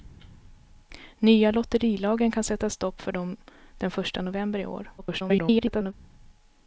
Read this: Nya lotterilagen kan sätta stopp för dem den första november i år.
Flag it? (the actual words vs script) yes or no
yes